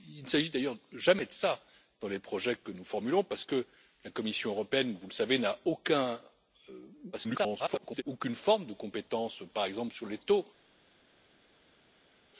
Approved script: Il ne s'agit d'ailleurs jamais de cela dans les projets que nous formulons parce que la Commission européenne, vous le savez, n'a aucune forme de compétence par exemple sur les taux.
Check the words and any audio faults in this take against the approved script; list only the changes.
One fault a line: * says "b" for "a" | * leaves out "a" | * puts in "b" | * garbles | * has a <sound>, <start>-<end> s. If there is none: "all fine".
* garbles